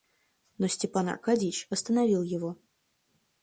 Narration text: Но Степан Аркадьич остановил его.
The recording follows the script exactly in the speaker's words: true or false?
true